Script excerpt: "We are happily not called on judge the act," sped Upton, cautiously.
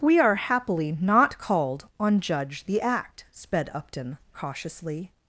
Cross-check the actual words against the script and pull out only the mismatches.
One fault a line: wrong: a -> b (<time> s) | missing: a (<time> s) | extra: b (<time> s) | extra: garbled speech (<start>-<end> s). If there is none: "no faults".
no faults